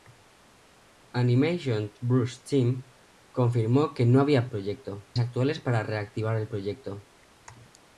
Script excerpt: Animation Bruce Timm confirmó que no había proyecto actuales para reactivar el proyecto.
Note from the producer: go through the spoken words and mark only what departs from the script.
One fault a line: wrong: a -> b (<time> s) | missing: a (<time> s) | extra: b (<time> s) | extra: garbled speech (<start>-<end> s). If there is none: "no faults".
no faults